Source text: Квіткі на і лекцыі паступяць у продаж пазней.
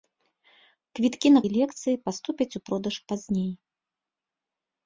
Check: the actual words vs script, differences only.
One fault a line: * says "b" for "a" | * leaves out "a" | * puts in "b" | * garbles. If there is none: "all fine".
all fine